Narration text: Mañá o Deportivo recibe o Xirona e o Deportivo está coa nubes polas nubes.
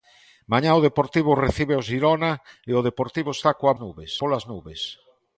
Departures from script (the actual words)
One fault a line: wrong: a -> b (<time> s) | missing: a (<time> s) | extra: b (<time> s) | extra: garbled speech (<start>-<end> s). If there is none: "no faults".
no faults